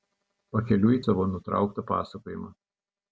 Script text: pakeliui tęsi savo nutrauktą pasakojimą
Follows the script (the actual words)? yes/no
no